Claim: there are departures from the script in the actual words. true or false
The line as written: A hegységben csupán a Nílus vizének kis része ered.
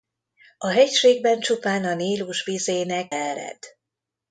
true